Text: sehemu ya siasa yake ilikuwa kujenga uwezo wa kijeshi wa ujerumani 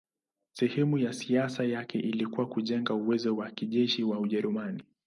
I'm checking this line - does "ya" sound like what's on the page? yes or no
yes